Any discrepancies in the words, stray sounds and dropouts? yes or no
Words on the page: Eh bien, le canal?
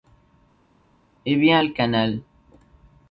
no